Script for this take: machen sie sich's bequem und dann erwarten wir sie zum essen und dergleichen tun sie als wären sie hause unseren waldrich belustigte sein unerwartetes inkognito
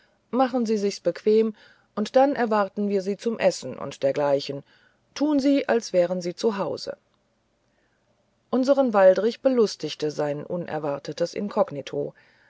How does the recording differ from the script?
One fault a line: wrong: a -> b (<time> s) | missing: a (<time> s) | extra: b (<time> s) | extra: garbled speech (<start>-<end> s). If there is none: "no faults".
extra: zu (6.3 s)